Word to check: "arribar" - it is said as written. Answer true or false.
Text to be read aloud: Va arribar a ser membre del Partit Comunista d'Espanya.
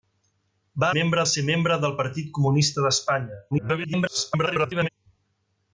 false